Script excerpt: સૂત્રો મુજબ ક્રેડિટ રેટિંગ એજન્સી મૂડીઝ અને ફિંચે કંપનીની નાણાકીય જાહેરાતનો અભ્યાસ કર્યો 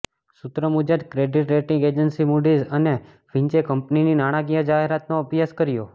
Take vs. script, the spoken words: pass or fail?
pass